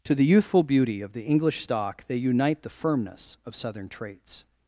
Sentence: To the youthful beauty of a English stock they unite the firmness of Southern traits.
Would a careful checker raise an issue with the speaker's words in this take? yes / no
yes